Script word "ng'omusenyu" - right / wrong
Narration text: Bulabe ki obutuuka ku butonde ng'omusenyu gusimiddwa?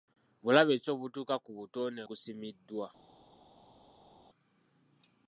wrong